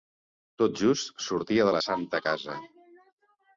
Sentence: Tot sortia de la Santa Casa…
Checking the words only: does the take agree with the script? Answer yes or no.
no